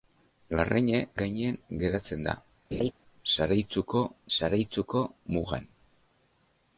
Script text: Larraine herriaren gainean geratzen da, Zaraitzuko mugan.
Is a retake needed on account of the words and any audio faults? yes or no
yes